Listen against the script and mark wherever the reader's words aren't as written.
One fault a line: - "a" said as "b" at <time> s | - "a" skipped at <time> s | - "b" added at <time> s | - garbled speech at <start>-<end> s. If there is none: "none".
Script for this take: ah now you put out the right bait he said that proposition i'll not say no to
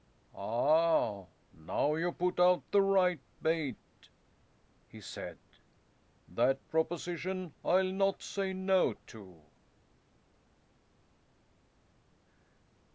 none